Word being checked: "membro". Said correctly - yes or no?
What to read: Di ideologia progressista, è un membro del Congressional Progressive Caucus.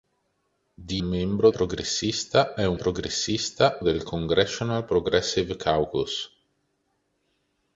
no